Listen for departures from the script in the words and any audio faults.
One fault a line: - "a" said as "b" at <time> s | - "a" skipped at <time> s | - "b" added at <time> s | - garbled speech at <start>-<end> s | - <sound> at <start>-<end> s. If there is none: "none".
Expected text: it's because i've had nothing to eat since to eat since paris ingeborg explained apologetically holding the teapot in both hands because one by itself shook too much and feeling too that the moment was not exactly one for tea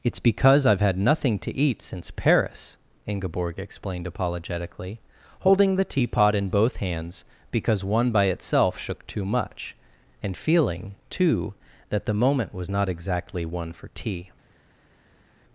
- "to eat since" skipped at 2.1 s